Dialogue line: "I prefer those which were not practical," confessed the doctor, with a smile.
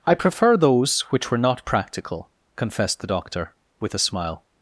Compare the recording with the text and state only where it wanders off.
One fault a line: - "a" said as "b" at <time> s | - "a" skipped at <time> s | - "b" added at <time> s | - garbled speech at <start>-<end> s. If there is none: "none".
none